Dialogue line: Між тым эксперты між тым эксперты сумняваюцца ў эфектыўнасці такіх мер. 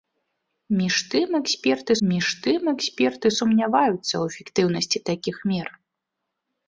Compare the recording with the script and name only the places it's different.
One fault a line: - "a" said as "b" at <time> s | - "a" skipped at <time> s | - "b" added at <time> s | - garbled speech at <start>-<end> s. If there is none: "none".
none